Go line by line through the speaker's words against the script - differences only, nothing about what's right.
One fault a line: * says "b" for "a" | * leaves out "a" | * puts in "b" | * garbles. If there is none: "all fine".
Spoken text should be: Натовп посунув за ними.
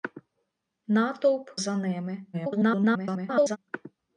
* leaves out "посунув"
* garbles